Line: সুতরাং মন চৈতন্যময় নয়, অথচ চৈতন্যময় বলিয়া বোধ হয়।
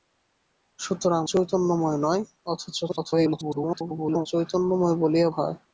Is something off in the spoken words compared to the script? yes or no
yes